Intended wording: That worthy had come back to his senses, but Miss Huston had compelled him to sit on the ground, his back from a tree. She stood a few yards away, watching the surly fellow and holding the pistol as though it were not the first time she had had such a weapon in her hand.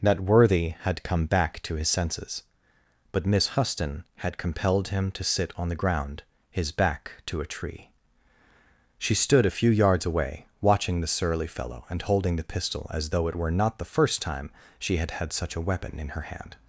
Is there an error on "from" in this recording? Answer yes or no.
yes